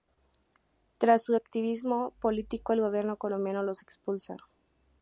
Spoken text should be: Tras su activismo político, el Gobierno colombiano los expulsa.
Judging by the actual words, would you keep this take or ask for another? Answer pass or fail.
pass